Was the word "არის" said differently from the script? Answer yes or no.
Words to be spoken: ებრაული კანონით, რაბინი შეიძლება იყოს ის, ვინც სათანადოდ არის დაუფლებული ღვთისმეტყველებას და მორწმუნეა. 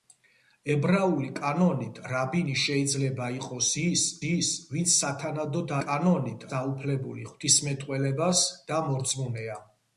yes